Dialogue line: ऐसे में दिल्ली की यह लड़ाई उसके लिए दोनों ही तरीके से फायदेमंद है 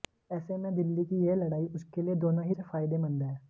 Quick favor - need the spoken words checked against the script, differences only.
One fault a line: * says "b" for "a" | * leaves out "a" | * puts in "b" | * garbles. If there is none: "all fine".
* leaves out "तरीके"